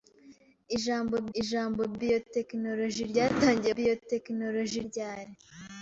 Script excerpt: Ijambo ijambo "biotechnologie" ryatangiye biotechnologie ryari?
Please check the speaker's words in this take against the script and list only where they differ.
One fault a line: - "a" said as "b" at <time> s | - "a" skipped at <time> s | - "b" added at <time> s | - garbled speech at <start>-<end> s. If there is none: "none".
none